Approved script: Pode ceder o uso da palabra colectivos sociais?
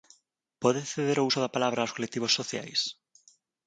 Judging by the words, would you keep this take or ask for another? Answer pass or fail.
fail